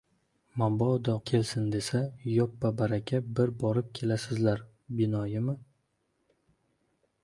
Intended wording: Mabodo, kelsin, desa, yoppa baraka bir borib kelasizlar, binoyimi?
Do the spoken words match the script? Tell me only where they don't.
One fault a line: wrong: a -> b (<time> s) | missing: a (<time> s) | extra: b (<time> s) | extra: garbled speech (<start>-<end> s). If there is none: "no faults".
no faults